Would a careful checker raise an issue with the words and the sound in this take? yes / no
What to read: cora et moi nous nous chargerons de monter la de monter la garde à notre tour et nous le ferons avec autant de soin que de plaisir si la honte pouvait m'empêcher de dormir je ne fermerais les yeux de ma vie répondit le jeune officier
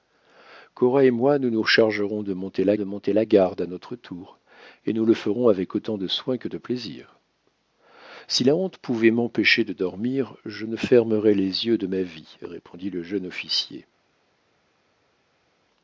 no